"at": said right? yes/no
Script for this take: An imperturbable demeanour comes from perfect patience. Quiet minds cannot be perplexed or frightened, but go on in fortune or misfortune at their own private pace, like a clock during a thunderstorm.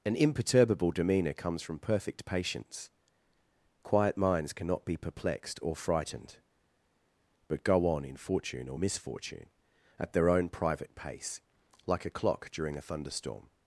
yes